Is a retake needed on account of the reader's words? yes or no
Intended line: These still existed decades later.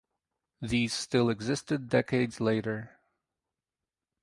no